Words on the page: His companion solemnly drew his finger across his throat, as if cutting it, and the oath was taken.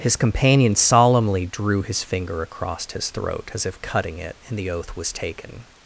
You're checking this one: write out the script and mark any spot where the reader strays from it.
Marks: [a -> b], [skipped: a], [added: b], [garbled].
His companion solemnly drew his finger across his throat, as if cutting it, and the oath was taken.